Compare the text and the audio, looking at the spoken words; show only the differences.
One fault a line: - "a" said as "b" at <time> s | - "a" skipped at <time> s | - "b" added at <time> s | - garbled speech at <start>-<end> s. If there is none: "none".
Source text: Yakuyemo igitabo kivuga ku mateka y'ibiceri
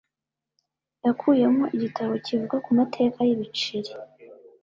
none